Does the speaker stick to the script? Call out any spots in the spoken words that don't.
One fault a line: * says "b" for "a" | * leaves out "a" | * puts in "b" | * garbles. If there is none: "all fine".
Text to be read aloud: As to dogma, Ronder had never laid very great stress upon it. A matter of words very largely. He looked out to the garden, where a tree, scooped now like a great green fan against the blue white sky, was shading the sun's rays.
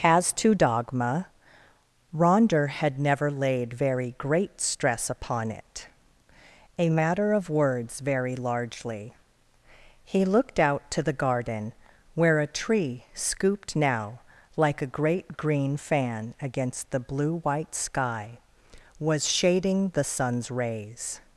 all fine